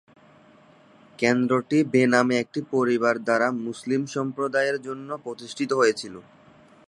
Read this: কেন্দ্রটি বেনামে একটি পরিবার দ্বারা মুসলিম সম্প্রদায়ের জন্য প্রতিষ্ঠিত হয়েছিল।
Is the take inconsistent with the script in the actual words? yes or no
no